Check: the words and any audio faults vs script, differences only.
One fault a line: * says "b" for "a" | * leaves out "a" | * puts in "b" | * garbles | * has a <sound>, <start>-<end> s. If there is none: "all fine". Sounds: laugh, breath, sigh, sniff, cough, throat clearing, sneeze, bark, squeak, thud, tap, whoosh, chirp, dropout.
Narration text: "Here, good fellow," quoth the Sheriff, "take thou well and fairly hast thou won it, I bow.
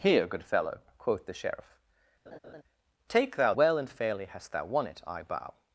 * has a laugh, 2.3-2.6 s